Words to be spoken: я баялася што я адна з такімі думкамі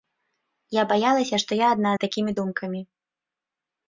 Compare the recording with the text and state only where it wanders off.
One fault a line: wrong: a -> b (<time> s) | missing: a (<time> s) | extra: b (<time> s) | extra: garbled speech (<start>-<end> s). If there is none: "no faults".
no faults